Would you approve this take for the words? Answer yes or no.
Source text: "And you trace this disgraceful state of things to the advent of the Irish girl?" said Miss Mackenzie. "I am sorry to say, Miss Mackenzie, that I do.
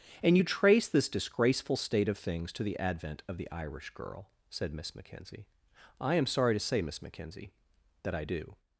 yes